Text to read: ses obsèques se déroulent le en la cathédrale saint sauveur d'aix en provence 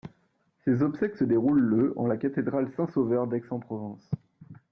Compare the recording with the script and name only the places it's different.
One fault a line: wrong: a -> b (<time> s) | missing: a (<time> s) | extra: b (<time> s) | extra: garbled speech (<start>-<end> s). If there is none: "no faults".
no faults